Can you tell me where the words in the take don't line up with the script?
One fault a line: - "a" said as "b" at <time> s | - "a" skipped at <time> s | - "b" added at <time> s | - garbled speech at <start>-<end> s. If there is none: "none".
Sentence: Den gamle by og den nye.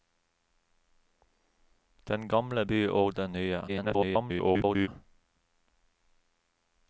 - garbled speech at 3.7-4.9 s